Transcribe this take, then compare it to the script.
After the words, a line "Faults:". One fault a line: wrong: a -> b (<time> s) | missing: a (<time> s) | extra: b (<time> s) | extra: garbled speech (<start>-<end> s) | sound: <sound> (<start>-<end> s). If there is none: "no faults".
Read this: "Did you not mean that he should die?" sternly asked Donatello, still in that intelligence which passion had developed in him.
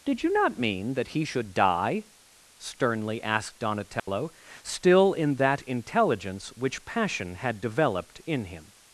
"Did you not mean that he should die?" sternly asked Donatello, still in that intelligence which passion had developed in him.
Faults:
sound: dropout (4.0-4.1 s)